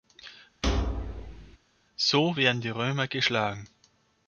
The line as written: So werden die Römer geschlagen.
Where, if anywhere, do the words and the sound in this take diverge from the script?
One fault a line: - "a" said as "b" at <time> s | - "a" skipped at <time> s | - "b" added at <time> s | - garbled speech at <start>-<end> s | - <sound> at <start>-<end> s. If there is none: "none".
- thud at 0.6-1.6 s